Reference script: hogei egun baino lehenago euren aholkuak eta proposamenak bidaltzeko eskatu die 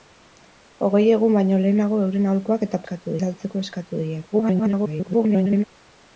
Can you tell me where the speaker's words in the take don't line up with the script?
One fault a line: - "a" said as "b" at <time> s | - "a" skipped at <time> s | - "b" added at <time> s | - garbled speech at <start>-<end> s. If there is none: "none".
- "proposamenak" said as "eskatu" at 2.8 s
- garbled speech at 4.3-5.6 s